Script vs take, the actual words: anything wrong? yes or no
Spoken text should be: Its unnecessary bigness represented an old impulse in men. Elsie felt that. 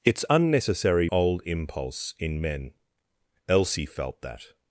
yes